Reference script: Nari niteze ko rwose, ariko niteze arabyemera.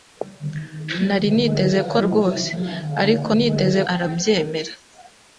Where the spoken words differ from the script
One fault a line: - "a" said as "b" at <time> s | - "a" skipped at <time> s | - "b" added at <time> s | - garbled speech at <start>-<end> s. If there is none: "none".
none